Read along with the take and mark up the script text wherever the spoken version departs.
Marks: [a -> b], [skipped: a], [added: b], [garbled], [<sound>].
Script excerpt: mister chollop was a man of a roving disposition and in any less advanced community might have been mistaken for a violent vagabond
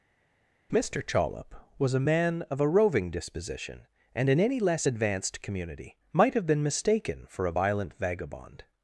mister chollop was a man of a roving disposition and in any less advanced community might have been mistaken for a violent vagabond